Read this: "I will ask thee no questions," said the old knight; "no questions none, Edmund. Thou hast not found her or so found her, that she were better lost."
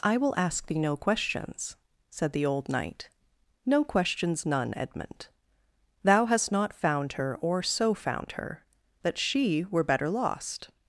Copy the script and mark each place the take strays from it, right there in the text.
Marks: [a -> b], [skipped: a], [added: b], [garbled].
"I will ask thee no questions," said the old knight; "no questions none, Edmund. Thou hast not found her or so found her, that she were better lost."